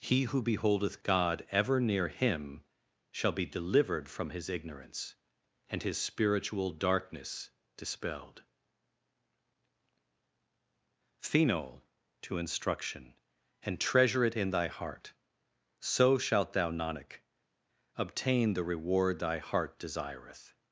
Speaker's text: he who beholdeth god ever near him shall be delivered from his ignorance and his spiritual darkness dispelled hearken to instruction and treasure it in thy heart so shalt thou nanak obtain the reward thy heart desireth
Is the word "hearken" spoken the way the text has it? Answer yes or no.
no